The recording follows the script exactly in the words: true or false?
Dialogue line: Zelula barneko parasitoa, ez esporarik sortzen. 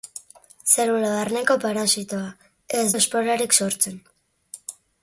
true